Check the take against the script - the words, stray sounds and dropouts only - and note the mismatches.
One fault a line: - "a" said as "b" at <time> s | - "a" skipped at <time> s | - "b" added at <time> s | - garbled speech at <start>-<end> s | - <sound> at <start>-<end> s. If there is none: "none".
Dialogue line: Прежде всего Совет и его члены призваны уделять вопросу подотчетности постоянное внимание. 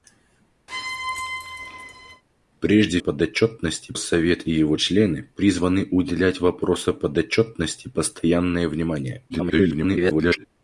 - squeak at 0.7-2.2 s
- "всего" said as "подотчетности" at 3.0 s
- garbled speech at 9.3-10.5 s